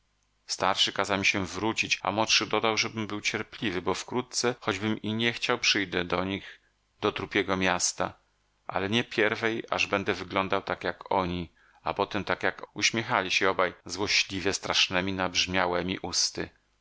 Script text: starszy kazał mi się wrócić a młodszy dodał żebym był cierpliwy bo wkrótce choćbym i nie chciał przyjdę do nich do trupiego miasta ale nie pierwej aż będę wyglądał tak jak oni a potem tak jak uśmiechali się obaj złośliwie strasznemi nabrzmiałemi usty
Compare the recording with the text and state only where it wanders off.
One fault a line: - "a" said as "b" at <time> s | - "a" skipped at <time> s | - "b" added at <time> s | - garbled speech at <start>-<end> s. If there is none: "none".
none